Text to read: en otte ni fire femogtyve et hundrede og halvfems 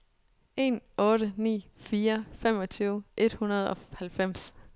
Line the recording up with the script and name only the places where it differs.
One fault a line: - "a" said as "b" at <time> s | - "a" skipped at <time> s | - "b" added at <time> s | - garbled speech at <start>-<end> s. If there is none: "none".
none